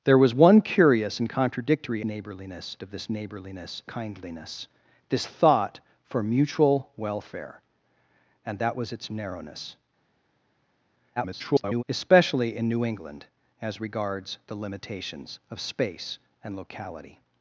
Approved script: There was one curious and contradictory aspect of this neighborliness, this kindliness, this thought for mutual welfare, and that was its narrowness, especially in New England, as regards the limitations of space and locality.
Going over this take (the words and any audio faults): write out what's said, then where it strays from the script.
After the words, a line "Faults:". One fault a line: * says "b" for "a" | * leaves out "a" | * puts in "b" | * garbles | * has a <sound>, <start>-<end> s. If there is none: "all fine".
There was one curious and contradictory neighborliness of this neighborliness, kindliness, this thought for mutual welfare, and that was its narrowness, [garbled] especially in New England, as regards the limitations of space and locality.
Faults:
* says "neighborliness" for "aspect"
* leaves out "this"
* garbles